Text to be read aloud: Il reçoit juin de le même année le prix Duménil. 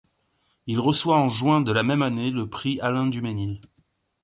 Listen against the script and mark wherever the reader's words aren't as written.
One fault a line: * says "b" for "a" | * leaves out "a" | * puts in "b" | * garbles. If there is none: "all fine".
* puts in "en"
* says "la" for "le"
* puts in "Alain"